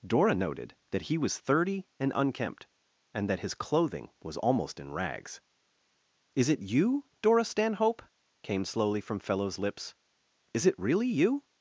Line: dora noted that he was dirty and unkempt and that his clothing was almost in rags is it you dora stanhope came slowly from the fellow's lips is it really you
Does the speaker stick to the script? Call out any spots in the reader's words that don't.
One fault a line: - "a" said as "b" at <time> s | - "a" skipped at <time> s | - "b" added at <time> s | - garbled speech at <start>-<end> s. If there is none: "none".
- "dirty" said as "thirty" at 1.4 s
- "the" skipped at 9.2 s